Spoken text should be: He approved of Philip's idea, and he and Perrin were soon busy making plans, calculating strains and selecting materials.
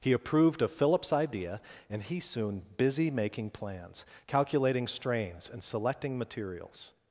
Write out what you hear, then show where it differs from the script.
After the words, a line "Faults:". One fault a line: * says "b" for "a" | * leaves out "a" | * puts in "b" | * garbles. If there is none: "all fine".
He approved of Philip's idea, and he soon busy making plans, calculating strains and selecting materials.
Faults:
* leaves out "and Perrin were"